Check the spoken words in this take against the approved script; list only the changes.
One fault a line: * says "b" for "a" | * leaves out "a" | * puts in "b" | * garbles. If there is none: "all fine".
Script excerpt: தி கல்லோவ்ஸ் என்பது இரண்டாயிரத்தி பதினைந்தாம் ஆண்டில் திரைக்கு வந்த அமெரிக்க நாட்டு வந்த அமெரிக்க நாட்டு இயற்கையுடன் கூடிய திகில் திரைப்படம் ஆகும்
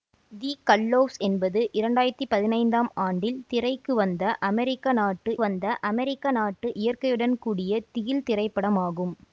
all fine